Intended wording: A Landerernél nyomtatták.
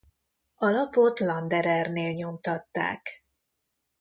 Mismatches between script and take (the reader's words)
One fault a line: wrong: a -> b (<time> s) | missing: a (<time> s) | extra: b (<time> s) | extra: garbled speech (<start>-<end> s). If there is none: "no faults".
extra: lapot (0.7 s)